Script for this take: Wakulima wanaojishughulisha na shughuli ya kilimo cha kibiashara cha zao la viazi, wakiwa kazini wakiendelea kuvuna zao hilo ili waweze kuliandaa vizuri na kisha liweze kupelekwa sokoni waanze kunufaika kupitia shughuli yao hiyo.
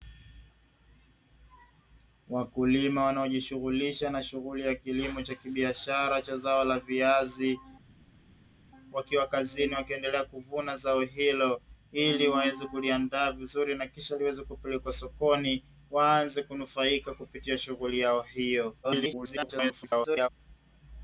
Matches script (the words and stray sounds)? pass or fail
fail